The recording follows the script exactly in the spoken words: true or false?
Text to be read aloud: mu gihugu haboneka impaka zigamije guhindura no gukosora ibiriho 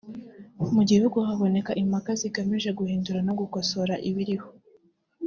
true